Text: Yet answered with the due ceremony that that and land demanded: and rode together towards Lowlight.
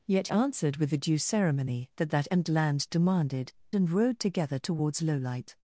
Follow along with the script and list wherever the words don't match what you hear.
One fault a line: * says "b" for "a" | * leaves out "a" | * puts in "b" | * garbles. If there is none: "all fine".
all fine